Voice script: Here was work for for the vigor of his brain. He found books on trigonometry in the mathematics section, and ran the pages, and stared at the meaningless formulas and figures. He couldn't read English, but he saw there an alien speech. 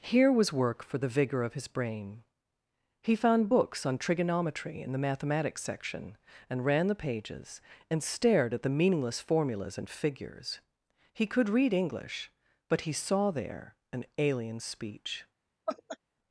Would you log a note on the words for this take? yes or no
yes